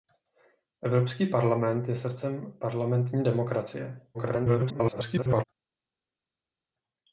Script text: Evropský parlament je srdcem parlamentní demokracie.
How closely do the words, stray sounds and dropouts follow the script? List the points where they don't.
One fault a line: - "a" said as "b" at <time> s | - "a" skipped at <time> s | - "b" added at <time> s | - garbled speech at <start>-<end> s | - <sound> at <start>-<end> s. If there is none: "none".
- garbled speech at 4.1-5.4 s